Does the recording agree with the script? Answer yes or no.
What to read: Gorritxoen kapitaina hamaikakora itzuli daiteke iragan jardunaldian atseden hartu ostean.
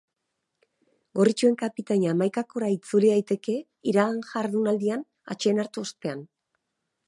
yes